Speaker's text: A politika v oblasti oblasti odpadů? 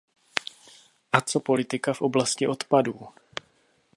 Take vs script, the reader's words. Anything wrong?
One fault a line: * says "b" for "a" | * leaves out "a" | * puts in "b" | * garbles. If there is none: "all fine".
* puts in "co"
* leaves out "oblasti"